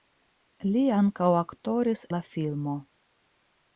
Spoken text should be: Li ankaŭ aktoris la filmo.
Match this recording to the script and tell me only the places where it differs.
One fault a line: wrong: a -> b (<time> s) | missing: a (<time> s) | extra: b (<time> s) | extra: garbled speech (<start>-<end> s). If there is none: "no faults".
no faults